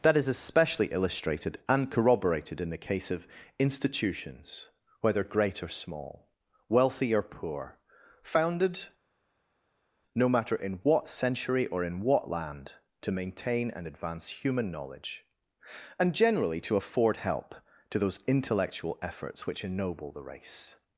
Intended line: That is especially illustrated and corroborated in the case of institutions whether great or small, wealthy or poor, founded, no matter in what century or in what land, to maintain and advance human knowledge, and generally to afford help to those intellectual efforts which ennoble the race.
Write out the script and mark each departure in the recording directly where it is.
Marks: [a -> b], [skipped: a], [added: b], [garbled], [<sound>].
That is especially illustrated and corroborated in the case of institutions whether great or small, wealthy or poor, founded, no matter in what century or in what land, to maintain and advance human knowledge, and generally to afford help to those intellectual efforts which ennoble the race.